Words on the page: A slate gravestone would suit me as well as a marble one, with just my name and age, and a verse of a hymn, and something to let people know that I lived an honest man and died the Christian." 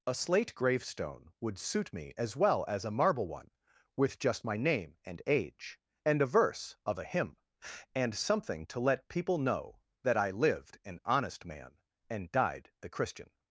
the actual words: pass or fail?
pass